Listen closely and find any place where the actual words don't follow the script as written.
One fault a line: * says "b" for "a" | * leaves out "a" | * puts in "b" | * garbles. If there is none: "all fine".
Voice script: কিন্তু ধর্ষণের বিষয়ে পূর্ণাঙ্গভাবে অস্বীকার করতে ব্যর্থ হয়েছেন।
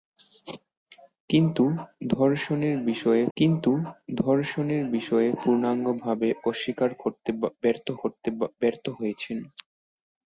* puts in "কিন্তু ধর্ষণের বিষয়ে"
* puts in "করতে ব্যর্থ"